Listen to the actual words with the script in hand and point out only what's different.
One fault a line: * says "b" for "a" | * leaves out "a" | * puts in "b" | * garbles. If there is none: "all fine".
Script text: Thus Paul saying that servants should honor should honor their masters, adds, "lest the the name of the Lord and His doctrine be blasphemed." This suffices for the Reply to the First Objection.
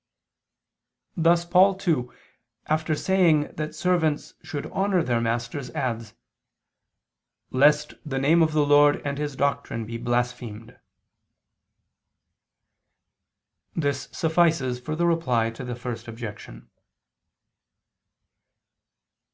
* puts in "too after"
* leaves out "should honor"
* leaves out "the"